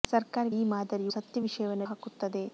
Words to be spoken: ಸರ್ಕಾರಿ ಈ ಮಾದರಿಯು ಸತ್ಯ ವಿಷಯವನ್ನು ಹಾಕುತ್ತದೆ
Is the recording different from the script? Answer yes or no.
no